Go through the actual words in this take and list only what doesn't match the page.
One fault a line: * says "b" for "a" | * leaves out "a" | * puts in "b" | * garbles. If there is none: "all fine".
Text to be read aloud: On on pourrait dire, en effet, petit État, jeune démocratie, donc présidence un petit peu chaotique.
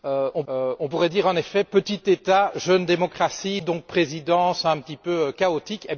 all fine